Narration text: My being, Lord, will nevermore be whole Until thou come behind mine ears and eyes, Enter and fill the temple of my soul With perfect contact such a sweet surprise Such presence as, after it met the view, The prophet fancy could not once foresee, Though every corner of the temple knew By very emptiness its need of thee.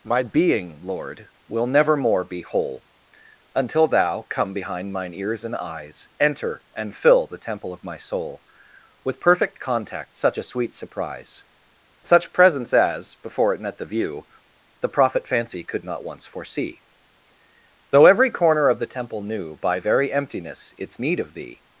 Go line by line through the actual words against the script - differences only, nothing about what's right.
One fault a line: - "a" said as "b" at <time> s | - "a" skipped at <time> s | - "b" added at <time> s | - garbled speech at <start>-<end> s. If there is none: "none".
- "after" said as "before" at 13.1 s